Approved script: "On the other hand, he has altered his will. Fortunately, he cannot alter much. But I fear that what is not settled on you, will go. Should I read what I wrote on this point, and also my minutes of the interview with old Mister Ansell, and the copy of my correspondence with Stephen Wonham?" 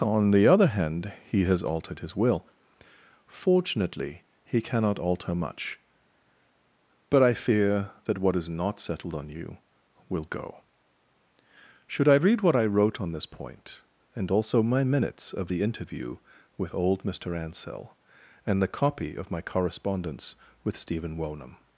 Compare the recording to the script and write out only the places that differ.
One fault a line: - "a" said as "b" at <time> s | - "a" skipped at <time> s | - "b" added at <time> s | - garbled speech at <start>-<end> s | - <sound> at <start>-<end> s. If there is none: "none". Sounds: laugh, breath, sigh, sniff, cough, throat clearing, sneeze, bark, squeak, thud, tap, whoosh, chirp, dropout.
none